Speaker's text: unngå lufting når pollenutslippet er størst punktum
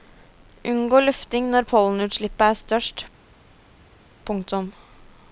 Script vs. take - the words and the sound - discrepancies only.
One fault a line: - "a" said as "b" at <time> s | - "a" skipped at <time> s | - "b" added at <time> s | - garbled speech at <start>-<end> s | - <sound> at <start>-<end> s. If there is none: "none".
none